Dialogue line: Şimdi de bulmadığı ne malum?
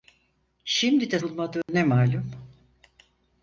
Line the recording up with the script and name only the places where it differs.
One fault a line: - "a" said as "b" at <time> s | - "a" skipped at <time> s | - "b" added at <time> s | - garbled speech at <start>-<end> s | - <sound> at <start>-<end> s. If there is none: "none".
- dropout at 1.6-1.7 s